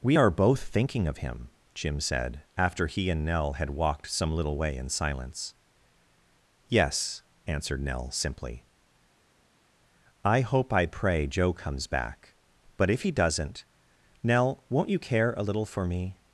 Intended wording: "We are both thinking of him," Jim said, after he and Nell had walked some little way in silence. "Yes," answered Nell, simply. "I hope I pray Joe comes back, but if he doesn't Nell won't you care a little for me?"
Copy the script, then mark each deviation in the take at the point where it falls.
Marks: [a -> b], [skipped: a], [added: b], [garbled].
"We are both thinking of him," Jim said, after he and Nell had walked some little way in silence. "Yes," answered Nell, simply. "I hope I pray Joe comes back, but if he doesn't Nell won't you care a little for me?"